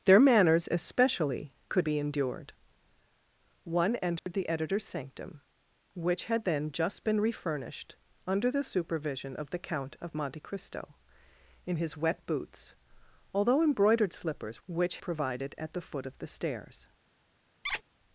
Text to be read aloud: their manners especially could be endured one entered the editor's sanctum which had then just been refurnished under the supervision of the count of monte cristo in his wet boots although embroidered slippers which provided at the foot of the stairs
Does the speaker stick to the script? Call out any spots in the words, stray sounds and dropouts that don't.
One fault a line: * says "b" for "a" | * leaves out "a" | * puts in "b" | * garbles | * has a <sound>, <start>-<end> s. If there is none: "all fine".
* has a dropout, 4.2-4.3 s
* has a squeak, 17.6-17.8 s